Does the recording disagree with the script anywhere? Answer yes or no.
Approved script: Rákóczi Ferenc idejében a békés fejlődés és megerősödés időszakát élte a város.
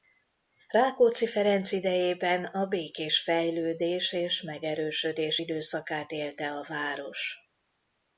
no